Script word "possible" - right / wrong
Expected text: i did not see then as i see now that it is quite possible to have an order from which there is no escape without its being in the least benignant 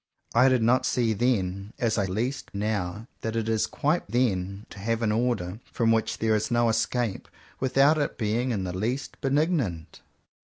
wrong